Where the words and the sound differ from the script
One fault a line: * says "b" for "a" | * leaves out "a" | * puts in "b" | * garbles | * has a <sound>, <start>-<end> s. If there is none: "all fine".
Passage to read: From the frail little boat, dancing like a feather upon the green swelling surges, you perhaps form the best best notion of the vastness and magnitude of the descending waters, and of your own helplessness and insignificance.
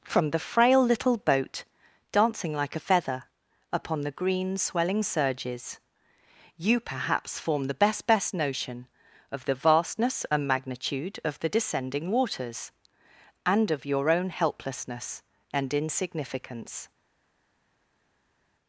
all fine